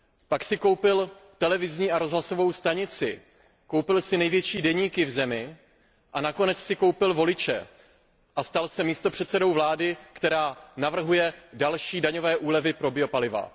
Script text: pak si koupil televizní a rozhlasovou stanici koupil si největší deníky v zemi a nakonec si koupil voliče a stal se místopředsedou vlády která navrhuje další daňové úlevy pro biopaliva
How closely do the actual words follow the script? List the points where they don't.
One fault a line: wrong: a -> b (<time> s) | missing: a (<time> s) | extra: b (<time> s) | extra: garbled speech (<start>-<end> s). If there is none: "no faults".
no faults